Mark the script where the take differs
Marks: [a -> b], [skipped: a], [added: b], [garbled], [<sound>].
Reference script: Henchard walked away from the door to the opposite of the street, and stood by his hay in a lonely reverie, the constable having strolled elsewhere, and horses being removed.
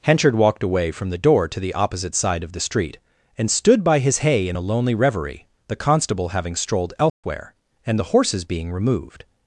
Henchard walked away from the door to the opposite [added: side] of the street, and stood by his hay in a lonely reverie, the constable having strolled elsewhere, [dropout] and [added: the] horses being removed.